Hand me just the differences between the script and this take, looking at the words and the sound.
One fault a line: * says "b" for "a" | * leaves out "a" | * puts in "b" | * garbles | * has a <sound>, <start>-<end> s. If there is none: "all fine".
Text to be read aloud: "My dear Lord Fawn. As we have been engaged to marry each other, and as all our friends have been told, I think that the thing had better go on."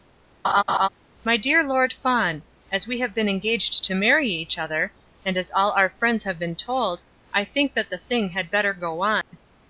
* has a laugh, 0.4-0.9 s
* has a dropout, 9.2-9.3 s